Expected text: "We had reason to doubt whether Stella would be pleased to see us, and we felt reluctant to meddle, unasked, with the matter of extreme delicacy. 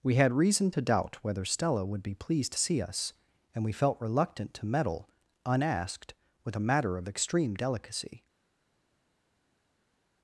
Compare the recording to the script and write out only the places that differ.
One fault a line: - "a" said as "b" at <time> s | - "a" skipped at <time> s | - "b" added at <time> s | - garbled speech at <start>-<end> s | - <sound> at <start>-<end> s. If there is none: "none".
- "the" said as "a" at 6.6 s